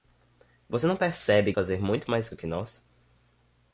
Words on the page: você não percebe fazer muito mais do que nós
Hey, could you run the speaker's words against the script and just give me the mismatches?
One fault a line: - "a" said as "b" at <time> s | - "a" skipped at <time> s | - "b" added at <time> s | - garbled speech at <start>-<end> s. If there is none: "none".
none